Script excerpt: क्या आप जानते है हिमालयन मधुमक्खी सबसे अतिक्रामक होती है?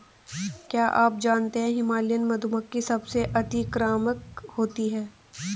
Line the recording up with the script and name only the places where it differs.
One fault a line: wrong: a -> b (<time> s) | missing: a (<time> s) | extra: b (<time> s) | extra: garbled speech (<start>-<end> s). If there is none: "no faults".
no faults